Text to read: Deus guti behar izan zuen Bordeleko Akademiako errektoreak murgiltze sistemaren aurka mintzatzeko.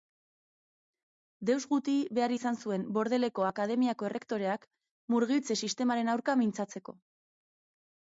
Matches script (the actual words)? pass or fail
pass